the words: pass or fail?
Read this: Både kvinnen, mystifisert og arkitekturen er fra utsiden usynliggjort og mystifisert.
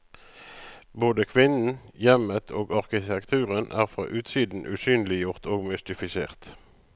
fail